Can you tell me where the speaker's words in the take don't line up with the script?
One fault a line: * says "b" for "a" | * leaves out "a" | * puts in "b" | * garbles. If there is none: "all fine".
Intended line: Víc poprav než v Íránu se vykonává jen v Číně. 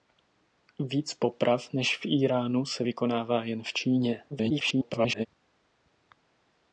* garbles